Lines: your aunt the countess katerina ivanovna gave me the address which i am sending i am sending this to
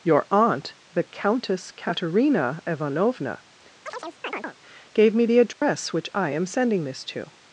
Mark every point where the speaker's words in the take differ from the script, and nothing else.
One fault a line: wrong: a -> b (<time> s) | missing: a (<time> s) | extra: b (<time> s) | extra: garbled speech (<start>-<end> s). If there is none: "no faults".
missing: i am sending (6.8 s)